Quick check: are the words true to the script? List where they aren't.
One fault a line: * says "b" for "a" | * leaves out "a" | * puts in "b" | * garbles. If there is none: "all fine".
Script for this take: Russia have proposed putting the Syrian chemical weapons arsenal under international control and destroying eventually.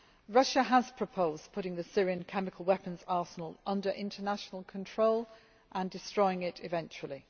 * says "has" for "have"
* puts in "it"